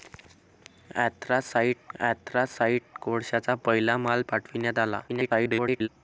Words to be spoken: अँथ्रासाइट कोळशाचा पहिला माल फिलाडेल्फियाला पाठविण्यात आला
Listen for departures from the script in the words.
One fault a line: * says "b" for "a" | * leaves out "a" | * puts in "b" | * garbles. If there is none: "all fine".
* puts in "अँथ्रासाइट"
* leaves out "फिलाडेल्फियाला"
* garbles